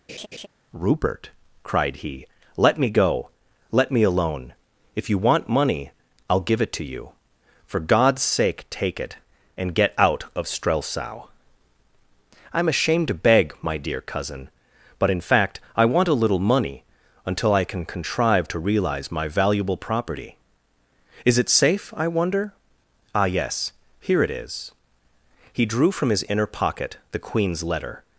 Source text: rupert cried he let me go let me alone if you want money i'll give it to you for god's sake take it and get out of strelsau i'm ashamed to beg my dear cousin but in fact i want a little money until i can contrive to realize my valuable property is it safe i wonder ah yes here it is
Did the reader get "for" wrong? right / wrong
right